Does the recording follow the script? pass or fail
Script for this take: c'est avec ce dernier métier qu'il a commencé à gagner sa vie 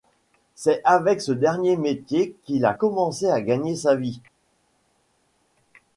pass